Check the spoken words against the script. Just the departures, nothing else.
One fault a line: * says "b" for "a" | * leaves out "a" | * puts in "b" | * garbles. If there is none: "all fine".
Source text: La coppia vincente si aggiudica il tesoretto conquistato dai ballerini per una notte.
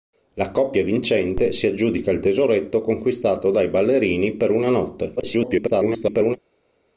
* garbles